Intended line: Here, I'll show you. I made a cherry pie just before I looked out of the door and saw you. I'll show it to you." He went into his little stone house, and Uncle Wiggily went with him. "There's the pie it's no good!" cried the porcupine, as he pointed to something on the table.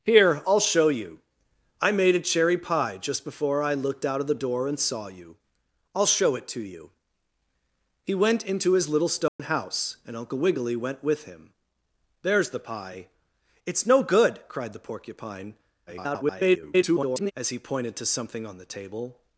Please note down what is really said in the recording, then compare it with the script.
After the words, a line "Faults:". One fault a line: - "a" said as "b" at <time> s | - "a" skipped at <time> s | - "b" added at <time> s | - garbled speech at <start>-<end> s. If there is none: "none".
Here, I'll show you. I made a cherry pie just before I looked out of the door and saw you. I'll show it to you." He went into his little stone house, and Uncle Wiggily went with him. "There's the pie it's no good!" cried the porcupine, [garbled] as he pointed to something on the table.
Faults:
- garbled speech at 15.9-17.3 s